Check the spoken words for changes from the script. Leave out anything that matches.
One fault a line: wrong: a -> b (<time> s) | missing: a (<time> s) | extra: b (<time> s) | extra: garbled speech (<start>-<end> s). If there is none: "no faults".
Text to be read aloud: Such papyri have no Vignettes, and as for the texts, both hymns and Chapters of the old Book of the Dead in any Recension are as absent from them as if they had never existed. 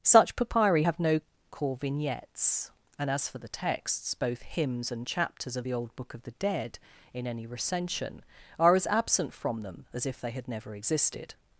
extra: core (1.5 s)